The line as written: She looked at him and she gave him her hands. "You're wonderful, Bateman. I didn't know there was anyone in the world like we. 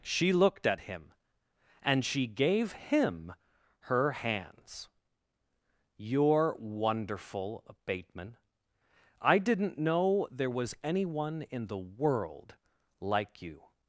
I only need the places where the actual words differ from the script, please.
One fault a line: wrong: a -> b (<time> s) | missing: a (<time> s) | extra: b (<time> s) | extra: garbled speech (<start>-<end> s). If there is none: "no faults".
wrong: we -> you (13.4 s)